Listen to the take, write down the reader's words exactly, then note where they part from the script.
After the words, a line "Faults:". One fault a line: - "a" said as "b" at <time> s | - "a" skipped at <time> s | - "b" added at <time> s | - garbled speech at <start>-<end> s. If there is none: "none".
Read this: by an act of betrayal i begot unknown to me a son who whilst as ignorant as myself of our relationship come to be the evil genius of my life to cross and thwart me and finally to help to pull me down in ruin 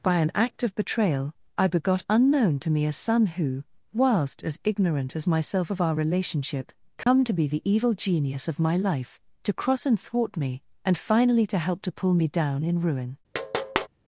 by an act of betrayal i begot unknown to me a son who whilst as ignorant as myself of our relationship come to be the evil genius of my life to cross and thwart me and finally to help to pull me down in ruin
Faults:
none